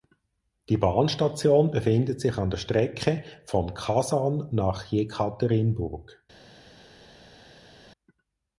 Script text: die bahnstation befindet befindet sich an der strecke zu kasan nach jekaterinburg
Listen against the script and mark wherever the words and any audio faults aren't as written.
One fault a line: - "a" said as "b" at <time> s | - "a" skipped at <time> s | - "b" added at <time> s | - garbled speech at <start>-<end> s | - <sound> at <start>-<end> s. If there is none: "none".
- "befindet" skipped at 2.2 s
- "zu" said as "von" at 3.4 s